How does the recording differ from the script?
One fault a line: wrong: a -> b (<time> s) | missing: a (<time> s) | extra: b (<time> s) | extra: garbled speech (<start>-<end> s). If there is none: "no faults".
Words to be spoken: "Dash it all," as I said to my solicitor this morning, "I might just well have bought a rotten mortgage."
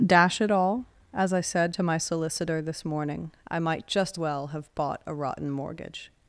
no faults